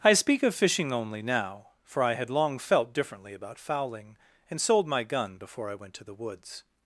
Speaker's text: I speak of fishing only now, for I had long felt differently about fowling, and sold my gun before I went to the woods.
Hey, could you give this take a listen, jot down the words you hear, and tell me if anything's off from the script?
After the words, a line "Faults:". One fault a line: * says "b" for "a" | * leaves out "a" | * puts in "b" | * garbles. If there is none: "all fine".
I speak of fishing only now, for I had long felt differently about fowling, and sold my gun before I went to the woods.
Faults:
all fine